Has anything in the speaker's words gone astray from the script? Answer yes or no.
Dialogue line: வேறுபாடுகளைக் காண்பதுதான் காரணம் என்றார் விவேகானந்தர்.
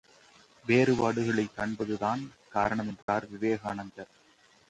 no